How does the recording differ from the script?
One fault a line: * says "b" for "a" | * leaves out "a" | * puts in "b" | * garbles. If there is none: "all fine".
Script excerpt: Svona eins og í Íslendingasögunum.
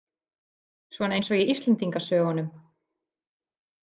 all fine